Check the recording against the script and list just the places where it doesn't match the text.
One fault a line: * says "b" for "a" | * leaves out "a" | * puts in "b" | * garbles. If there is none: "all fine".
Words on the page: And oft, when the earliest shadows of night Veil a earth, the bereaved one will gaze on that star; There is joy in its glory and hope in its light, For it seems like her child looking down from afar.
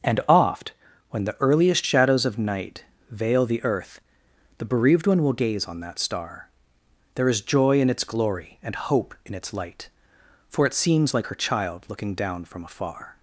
* says "the" for "a"